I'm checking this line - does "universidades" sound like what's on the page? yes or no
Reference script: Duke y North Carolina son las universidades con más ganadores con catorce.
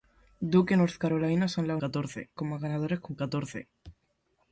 no